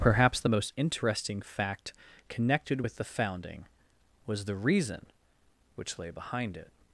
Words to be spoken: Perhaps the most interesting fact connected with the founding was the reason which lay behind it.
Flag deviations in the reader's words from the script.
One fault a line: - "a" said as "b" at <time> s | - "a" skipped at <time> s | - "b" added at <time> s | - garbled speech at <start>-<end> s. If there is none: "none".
none